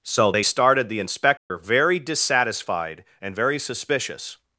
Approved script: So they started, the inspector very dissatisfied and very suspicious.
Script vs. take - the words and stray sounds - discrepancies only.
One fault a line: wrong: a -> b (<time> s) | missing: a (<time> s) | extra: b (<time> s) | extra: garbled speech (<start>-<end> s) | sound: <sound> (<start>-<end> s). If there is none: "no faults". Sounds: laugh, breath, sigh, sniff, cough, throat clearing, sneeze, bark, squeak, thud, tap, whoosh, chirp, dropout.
sound: dropout (1.4-1.5 s)